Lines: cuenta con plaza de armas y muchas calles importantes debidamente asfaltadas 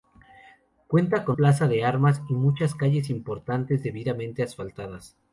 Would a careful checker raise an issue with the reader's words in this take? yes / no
no